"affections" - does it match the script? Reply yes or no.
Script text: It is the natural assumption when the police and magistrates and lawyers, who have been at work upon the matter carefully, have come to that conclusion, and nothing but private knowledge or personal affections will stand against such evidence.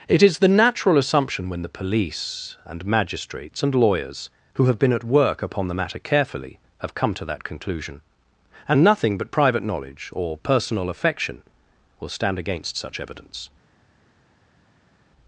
no